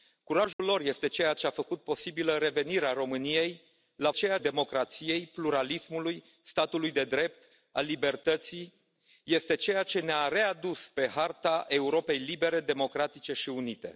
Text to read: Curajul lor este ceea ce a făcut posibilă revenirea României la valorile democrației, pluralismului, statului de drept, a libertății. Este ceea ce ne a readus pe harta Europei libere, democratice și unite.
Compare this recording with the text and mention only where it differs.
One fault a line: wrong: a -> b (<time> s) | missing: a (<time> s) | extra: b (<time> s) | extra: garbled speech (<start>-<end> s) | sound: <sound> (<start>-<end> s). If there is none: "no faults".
sound: dropout (0.5-0.6 s)
wrong: valorile -> ceea (4.1 s)